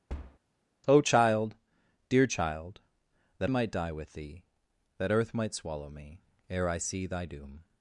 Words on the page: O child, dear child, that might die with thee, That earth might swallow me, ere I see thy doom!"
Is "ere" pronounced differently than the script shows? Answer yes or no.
no